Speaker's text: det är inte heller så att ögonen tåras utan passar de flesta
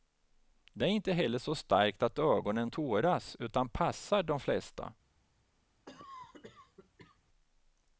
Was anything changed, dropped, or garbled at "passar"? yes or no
no